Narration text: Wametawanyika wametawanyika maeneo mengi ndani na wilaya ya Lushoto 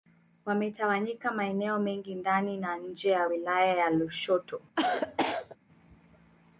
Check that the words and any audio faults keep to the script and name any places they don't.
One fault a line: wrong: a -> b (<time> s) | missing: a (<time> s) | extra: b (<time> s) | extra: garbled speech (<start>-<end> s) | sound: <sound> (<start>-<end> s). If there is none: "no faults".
missing: wametawanyika (1.3 s)
extra: nje ya (2.8 s)
sound: cough (4.8-5.6 s)